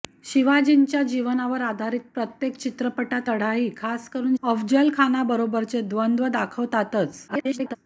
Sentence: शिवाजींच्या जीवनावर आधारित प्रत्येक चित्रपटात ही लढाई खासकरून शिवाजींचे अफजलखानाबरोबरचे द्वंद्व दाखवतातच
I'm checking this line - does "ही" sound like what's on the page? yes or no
no